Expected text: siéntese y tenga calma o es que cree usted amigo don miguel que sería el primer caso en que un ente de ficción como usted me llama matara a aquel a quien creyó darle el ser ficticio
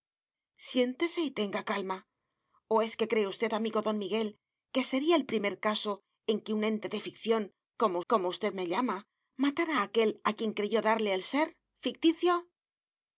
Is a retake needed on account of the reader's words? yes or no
yes